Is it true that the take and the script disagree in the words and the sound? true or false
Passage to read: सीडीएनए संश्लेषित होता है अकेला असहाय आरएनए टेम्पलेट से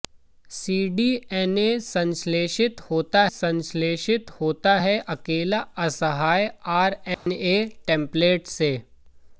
true